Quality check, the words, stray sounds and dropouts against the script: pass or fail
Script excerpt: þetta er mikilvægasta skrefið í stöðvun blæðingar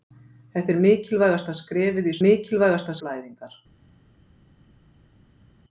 fail